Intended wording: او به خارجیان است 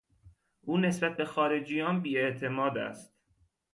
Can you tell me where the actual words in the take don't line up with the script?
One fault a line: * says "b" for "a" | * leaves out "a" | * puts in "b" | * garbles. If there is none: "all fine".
* puts in "نسبت"
* puts in "بیاعتماد"